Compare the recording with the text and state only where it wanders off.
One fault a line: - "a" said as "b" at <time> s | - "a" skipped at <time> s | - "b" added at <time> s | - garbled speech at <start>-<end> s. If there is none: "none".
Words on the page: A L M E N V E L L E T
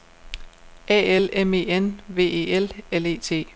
none